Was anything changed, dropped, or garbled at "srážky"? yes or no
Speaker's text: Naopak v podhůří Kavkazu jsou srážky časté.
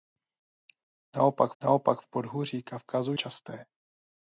yes